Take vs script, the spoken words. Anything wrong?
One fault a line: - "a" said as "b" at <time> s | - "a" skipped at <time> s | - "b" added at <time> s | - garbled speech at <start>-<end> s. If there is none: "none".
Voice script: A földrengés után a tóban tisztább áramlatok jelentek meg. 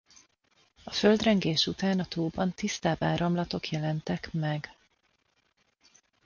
none